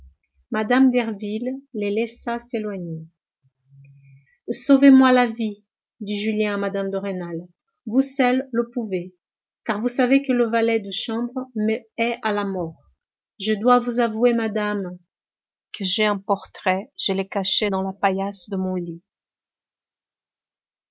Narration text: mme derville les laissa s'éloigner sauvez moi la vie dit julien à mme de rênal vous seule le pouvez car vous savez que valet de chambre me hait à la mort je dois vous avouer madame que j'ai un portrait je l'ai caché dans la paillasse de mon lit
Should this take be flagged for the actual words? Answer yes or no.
yes